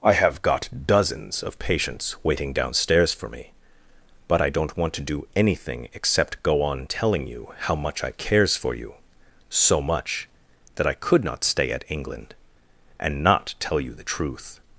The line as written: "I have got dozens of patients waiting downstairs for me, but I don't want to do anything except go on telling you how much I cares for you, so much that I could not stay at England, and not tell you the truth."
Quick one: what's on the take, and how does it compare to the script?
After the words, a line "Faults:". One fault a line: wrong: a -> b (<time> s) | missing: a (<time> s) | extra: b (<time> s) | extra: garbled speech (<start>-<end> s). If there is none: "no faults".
"I have got dozens of patients waiting downstairs for me, but I don't want to do anything except go on telling you how much I cares for you, so much that I could not stay at England, and not tell you the truth."
Faults:
no faults